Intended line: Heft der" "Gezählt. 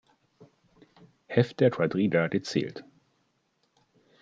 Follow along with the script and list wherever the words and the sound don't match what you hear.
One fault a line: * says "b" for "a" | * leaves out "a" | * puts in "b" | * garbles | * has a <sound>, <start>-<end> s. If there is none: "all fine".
* puts in "Quadriga"